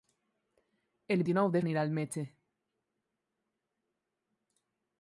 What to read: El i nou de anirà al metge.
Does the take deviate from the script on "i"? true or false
false